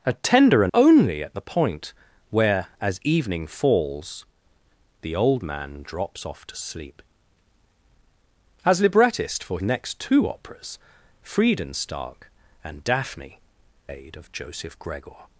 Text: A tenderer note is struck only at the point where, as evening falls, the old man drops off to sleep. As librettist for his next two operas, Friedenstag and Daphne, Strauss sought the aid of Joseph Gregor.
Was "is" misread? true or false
true